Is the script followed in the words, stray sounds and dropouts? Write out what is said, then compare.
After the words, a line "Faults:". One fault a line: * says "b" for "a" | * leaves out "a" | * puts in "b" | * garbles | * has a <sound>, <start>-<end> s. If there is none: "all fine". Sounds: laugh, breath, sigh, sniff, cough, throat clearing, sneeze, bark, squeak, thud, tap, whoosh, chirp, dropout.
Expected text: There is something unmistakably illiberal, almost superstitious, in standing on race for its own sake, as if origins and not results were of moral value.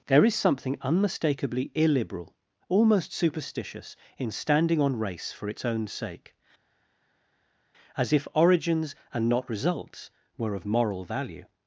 There is something unmistakably illiberal, almost superstitious, in standing on race for its own sake, as if origins and not results were of moral value.
Faults:
all fine